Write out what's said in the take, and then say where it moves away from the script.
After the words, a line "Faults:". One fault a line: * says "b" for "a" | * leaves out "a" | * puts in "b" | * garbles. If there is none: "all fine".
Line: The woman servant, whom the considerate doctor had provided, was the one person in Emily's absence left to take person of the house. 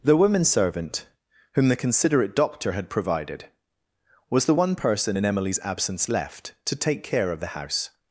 The woman servant, whom the considerate doctor had provided, was the one person in Emily's absence left to take care of the house.
Faults:
* says "care" for "person"